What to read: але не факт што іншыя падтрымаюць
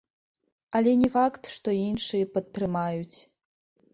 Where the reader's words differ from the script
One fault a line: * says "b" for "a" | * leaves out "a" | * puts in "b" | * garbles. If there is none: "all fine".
all fine